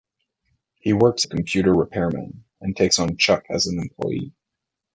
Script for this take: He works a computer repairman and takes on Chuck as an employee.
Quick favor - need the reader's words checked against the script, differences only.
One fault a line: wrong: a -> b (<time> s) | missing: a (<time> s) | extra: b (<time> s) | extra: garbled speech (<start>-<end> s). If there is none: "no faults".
no faults